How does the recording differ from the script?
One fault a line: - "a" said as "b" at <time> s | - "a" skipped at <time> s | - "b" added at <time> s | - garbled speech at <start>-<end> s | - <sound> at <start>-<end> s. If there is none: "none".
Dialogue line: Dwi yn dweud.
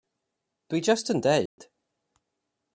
- "jyst" added at 0.9 s
- dropout at 1.5-1.6 s